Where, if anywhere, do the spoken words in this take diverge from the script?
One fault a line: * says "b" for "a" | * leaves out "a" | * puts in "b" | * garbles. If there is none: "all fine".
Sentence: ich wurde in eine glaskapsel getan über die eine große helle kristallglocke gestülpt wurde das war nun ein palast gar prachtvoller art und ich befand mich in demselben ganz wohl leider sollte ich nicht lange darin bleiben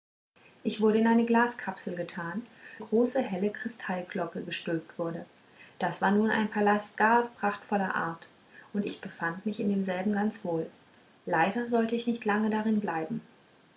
* leaves out "über die eine"